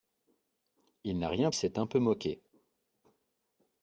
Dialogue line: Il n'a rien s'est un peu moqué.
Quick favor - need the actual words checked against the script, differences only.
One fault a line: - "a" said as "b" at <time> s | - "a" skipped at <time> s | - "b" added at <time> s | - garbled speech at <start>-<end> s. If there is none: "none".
none